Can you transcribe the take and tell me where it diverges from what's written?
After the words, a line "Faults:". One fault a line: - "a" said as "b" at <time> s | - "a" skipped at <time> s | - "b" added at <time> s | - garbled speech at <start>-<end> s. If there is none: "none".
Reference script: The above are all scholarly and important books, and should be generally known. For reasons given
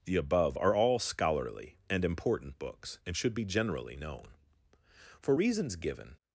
The above are all scholarly and important books, and should be generally known. For reasons given
Faults:
none